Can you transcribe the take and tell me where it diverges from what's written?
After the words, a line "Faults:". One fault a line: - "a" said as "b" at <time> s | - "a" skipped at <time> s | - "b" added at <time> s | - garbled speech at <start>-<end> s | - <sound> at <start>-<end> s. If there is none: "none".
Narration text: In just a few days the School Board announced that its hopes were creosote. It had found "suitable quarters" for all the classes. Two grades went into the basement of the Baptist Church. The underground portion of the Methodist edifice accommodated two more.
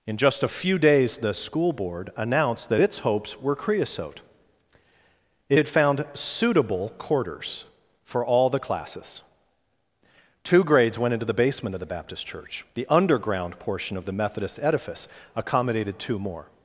In just a few days the School Board announced that its hopes were creosote. It had found "suitable quarters" for all the classes. Two grades went into the basement of the Baptist Church. The underground portion of the Methodist edifice accommodated two more.
Faults:
none